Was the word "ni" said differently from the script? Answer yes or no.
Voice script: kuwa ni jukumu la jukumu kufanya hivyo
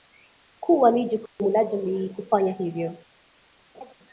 no